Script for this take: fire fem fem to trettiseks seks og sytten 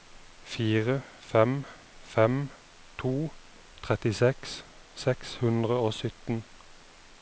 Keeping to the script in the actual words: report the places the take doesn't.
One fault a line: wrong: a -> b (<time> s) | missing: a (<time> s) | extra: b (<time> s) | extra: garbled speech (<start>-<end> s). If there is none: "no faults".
extra: hundre (5.4 s)